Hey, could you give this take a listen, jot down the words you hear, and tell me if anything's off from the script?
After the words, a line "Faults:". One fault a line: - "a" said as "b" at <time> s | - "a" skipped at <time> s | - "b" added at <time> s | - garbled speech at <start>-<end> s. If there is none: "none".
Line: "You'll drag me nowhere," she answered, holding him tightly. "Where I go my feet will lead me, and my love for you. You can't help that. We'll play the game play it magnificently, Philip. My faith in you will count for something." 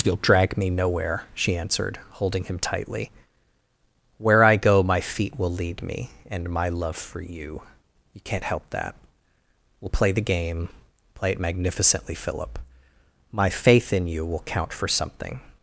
"You'll drag me nowhere," she answered, holding him tightly. "Where I go my feet will lead me, and my love for you. You can't help that. We'll play the game play it magnificently, Philip. My faith in you will count for something."
Faults:
none